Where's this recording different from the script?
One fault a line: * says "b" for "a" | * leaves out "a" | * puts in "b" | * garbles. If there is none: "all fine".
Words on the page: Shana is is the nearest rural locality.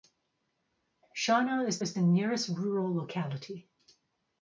all fine